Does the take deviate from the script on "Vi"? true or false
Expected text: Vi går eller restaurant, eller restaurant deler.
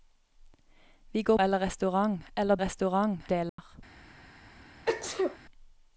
false